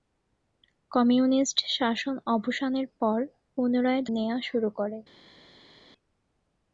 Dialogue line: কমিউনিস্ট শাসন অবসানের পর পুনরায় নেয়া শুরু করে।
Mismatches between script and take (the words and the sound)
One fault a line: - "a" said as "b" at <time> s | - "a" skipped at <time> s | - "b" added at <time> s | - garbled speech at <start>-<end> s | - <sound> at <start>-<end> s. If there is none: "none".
none